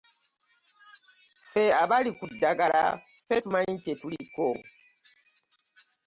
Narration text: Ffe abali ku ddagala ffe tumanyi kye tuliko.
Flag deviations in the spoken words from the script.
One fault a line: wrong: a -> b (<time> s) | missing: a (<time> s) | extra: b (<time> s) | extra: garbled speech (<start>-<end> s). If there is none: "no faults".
no faults